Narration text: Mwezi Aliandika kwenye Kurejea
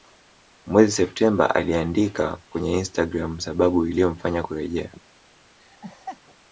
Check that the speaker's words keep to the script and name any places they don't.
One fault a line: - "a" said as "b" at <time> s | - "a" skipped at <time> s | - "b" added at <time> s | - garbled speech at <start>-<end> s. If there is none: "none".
- "Septemba" added at 0.9 s
- "Instagram sababu iliyomfanya" added at 2.8 s